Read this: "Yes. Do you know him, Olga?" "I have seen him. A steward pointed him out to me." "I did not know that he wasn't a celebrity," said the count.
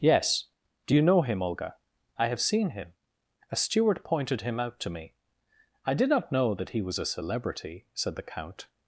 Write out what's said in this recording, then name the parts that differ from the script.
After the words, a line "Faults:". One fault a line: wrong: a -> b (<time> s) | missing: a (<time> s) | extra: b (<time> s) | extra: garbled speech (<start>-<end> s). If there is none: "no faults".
"Yes. Do you know him, Olga?" "I have seen him. A steward pointed him out to me." "I did not know that he was a celebrity," said the count.
Faults:
wrong: wasn't -> was (6.8 s)